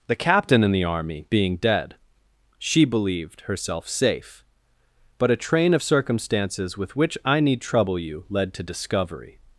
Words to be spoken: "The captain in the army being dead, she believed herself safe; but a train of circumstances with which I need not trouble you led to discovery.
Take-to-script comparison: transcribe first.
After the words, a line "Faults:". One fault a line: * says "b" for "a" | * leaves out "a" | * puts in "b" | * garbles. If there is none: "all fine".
"The captain in the army being dead, she believed herself safe; but a train of circumstances with which I need trouble you led to discovery.
Faults:
* leaves out "not"